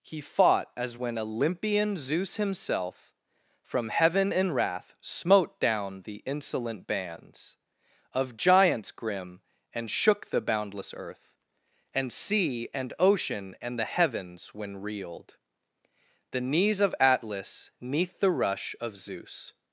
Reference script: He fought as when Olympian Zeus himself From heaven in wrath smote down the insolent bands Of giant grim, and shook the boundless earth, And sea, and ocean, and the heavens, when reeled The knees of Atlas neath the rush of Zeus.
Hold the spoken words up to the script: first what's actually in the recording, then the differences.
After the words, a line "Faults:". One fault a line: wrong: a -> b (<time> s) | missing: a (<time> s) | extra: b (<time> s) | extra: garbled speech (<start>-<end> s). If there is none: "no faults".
He fought as when Olympian Zeus himself From heaven in wrath smote down the insolent bands Of giants grim, and shook the boundless earth, And sea, and ocean, and the heavens, when reeled The knees of Atlas neath the rush of Zeus.
Faults:
wrong: giant -> giants (8.4 s)